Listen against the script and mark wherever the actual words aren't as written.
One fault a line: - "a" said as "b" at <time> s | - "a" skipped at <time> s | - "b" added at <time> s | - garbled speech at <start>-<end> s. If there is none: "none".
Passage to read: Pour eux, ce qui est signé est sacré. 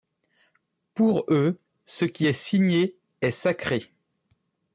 none